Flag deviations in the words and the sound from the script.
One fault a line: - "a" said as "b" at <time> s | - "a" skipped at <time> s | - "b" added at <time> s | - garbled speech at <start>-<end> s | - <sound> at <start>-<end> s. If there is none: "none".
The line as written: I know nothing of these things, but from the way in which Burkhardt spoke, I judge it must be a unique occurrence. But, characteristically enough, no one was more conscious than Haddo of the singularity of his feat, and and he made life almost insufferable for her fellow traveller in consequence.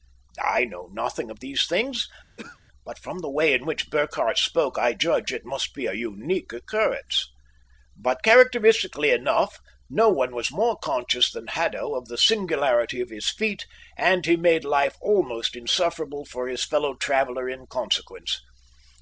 - throat clearing at 2.4-2.6 s
- "and" skipped at 14.3 s
- "her" said as "his" at 16.5 s